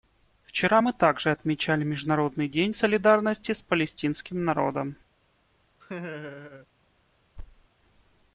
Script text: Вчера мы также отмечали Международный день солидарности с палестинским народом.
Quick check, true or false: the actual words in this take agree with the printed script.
true